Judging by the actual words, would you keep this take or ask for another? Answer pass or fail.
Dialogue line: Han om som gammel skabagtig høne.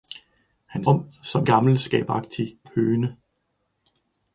pass